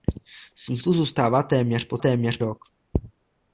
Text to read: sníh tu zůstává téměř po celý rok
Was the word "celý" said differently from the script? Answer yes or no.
yes